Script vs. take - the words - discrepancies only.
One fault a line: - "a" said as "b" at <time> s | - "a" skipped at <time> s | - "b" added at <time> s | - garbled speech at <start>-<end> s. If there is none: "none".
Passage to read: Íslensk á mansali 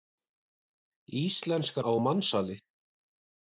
none